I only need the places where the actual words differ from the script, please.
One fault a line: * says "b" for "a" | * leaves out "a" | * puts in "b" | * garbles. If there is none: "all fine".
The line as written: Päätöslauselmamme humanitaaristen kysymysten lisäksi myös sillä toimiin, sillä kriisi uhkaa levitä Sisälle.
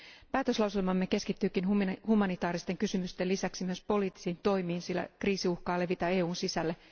* puts in "keskittyykin"
* says "poliittisiin" for "sillä"
* puts in "EUn"